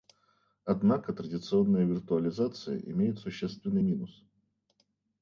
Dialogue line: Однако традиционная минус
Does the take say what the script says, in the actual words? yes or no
no